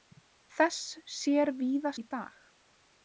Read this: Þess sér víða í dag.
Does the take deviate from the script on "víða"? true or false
false